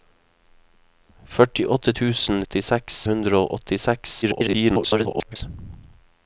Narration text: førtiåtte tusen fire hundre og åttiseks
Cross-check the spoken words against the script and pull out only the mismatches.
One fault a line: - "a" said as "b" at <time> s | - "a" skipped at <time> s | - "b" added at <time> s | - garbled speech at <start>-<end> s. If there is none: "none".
- "fire" said as "åttiseks" at 2.4 s
- garbled speech at 4.2-5.4 s